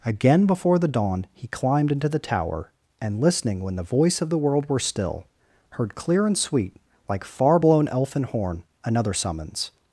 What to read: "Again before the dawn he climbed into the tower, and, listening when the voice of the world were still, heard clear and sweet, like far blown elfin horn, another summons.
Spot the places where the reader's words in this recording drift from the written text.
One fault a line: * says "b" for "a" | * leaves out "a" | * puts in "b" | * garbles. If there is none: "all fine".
all fine